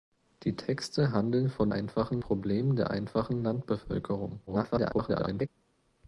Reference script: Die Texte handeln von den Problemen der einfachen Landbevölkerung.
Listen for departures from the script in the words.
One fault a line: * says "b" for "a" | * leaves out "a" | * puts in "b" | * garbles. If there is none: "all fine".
* says "einfachen" for "den"
* garbles